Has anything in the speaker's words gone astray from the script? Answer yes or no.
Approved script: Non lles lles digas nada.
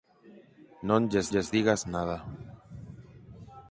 no